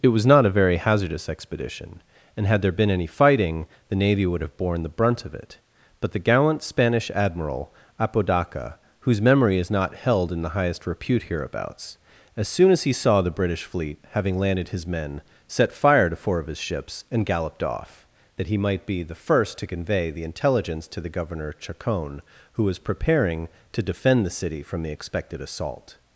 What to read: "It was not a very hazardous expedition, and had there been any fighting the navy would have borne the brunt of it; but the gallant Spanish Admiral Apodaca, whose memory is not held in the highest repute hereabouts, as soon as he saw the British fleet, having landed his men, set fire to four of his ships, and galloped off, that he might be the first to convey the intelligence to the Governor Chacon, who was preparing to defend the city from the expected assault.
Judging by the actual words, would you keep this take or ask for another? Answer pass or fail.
pass